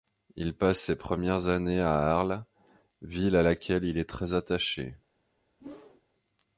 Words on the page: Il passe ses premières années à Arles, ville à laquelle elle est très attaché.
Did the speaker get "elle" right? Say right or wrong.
wrong